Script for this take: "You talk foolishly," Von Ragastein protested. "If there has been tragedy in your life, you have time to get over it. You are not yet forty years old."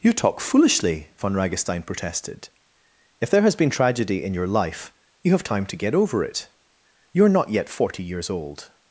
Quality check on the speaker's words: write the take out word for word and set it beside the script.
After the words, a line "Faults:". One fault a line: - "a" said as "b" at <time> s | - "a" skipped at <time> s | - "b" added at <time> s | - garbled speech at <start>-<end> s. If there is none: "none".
"You talk foolishly," Von Ragastein protested. "If there has been tragedy in your life, you have time to get over it. You are not yet forty years old."
Faults:
none